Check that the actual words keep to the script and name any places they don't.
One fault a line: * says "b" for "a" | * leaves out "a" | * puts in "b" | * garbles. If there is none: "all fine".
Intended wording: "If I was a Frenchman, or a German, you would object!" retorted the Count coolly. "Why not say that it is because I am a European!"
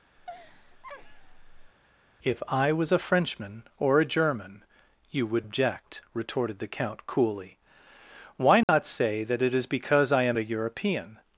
all fine